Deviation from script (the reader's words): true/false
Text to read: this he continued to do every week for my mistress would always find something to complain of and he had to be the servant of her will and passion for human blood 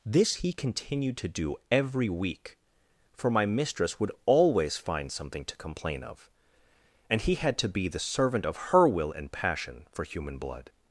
false